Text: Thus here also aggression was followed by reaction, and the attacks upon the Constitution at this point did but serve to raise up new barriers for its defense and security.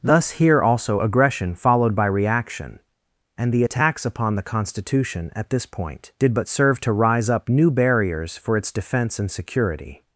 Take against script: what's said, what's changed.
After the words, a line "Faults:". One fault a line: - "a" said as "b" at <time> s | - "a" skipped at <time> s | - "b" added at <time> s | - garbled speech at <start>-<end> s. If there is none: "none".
Thus here also aggression followed by reaction, and the attacks upon the Constitution at this point did but serve to rise up new barriers for its defense and security.
Faults:
- "was" skipped at 1.6 s
- "raise" said as "rise" at 6.9 s